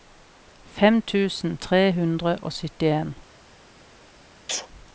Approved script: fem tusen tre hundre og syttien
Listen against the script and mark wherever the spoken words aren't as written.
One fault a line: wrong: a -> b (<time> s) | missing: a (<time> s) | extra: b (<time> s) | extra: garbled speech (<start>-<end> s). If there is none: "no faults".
no faults